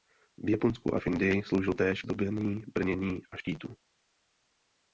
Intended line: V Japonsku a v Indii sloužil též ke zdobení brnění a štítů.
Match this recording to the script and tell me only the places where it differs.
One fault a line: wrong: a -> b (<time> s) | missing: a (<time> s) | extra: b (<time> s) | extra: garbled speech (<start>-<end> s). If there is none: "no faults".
missing: ke (2.0 s)